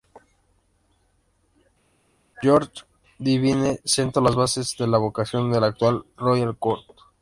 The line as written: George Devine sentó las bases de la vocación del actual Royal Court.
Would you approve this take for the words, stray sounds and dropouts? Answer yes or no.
yes